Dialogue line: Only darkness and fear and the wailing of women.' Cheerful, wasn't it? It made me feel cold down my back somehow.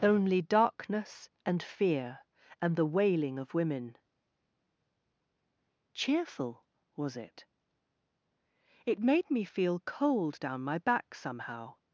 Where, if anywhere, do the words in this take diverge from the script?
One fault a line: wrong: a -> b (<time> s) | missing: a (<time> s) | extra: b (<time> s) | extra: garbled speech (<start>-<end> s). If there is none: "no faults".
wrong: wasn't -> was (7.0 s)